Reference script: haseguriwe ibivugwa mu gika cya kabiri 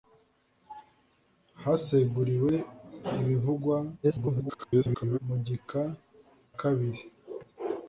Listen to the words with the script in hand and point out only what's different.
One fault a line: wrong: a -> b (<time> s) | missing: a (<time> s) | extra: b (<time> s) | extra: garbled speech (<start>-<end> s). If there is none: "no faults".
extra: garbled speech (4.0-5.2 s)
missing: cya (5.8 s)